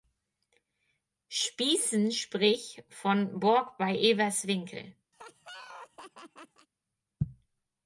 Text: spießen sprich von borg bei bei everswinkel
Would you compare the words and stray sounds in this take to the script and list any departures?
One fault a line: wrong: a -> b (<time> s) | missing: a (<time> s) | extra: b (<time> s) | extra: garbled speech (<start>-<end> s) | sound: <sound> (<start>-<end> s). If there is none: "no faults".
missing: bei (4.0 s)
sound: laugh (5.1-6.7 s)